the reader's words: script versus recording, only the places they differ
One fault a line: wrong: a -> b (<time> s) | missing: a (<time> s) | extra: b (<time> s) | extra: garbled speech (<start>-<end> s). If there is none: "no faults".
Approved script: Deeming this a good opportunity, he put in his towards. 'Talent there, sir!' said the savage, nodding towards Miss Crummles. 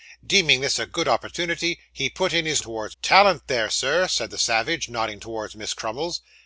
no faults